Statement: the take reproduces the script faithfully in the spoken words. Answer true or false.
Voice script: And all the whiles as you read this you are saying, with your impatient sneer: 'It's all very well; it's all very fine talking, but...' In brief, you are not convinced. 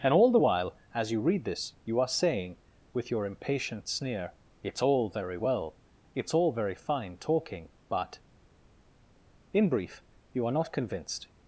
false